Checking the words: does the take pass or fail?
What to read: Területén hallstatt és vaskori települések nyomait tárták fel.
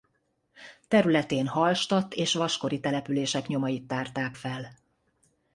pass